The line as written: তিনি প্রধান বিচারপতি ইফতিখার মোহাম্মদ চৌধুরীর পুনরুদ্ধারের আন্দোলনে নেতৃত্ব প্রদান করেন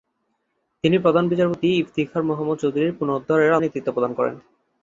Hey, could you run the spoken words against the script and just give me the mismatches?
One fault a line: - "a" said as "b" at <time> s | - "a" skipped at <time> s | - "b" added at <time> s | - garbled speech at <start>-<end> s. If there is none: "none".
- "আন্দোলনে" skipped at 3.6 s